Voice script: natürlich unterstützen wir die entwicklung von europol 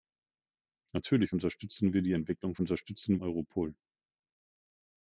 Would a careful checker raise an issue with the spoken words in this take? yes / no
yes